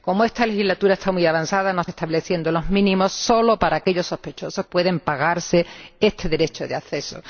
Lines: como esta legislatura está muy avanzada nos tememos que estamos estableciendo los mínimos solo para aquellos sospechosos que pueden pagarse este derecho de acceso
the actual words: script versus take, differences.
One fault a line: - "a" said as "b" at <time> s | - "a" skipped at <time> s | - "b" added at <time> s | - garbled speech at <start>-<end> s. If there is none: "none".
- "tememos que estamos" skipped at 1.9 s
- "que" skipped at 4.7 s